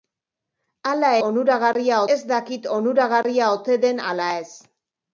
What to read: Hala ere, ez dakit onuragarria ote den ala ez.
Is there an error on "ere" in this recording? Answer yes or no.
yes